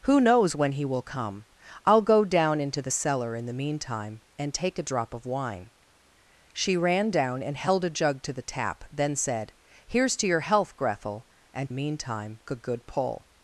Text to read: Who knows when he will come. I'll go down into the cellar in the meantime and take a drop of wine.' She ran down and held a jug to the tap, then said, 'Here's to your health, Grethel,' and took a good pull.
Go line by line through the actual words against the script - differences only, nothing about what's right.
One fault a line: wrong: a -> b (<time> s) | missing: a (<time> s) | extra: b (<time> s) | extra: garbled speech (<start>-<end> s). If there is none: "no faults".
wrong: took -> meantime (11.7 s)